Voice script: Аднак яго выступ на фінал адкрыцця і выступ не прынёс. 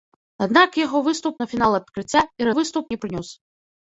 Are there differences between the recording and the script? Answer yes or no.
no